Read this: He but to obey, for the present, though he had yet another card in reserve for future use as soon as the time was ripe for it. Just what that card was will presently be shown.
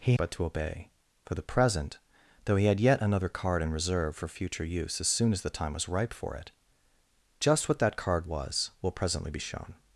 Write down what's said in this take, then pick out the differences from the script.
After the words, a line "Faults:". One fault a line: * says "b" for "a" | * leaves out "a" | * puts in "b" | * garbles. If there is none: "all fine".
He but to obey, for the present, though he had yet another card in reserve for future use as soon as the time was ripe for it. Just what that card was will presently be shown.
Faults:
all fine